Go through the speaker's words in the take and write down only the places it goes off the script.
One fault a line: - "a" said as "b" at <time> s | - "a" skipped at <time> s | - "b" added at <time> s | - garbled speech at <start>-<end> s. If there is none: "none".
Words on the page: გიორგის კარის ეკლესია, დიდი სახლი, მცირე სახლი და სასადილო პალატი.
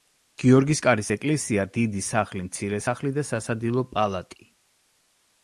none